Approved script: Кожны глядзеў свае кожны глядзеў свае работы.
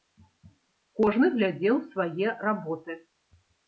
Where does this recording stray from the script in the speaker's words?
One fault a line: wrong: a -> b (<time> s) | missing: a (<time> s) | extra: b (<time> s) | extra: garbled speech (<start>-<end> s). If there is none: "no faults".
missing: кожны глядзеў свае (2.3 s)